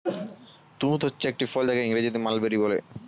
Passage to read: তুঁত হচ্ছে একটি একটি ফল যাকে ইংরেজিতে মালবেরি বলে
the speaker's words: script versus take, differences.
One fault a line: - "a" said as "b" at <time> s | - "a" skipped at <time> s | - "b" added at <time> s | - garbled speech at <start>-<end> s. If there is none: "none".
- "একটি" skipped at 1.4 s